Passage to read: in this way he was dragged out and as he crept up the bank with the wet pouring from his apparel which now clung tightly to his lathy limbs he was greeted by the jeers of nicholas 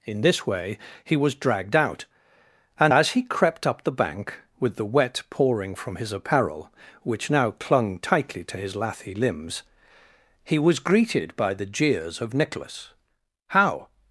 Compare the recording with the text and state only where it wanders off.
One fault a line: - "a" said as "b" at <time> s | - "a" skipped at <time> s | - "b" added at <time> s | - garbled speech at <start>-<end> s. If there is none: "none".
- "how" added at 13.5 s